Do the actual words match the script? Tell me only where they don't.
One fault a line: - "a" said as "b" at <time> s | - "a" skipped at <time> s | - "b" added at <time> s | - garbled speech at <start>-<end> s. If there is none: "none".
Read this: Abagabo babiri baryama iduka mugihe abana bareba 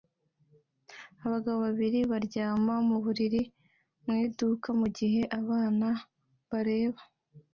- "mu buriri mu" added at 2.9 s